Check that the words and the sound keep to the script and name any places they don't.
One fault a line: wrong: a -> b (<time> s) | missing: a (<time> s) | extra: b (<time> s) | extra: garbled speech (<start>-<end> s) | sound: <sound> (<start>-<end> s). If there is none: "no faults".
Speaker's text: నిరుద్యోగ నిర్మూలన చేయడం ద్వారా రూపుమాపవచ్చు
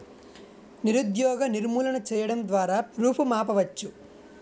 no faults